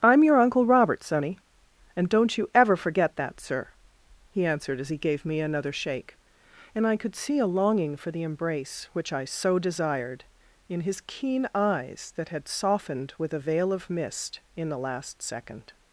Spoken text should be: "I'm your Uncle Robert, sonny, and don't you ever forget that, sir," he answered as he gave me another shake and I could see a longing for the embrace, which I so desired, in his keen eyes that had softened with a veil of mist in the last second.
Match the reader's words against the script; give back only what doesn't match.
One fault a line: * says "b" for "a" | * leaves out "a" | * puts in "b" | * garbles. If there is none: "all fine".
all fine